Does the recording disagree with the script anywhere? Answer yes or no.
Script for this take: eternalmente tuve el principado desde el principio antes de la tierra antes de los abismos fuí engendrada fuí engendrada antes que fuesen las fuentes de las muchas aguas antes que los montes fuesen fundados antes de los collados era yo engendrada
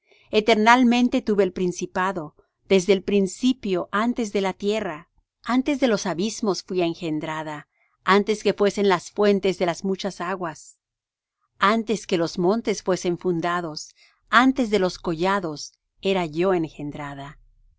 yes